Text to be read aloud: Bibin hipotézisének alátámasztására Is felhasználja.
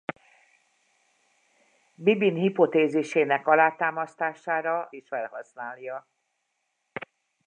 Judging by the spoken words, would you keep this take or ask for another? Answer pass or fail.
pass